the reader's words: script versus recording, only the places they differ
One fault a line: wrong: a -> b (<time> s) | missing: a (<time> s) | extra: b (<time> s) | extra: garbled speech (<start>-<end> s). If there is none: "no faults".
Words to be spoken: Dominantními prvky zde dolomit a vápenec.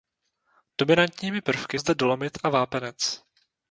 no faults